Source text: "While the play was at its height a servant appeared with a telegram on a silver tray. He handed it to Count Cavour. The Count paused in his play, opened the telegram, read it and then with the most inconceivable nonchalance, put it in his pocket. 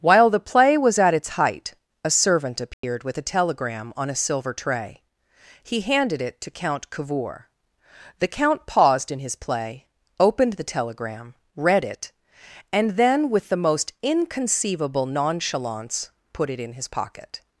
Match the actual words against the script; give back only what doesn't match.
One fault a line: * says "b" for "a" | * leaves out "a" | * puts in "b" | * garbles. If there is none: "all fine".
all fine